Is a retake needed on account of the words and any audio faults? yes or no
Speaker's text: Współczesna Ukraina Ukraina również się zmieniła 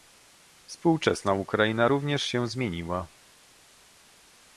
yes